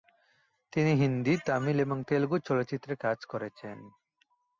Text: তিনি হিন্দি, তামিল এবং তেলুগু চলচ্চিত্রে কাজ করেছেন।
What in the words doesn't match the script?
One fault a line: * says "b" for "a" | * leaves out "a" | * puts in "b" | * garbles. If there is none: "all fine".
all fine